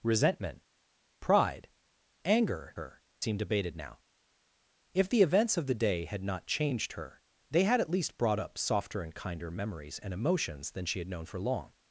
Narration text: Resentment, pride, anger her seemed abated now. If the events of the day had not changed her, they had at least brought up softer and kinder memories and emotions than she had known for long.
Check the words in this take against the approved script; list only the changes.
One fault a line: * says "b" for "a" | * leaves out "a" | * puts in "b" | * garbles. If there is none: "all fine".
all fine